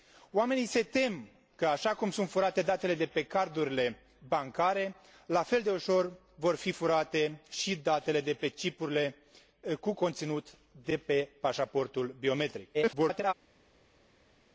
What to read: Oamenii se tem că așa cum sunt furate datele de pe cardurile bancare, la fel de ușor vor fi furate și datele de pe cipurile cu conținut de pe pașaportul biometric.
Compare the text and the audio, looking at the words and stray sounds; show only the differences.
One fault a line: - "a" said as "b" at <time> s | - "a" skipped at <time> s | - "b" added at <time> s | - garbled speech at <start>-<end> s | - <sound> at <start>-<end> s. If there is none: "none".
- garbled speech at 12.7-13.3 s